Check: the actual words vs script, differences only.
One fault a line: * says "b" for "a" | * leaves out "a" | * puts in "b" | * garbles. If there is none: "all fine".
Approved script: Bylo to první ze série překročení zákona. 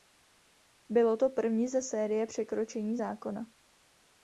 all fine